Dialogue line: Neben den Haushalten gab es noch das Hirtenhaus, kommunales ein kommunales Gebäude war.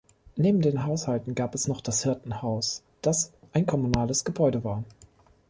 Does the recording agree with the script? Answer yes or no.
no